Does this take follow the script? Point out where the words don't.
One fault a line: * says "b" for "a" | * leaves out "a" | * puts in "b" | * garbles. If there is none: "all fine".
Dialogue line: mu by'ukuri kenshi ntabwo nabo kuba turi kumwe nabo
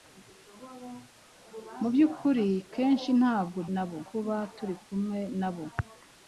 all fine